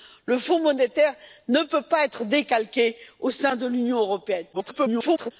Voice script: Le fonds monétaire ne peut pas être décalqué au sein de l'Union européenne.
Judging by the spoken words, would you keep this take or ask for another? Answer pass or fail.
fail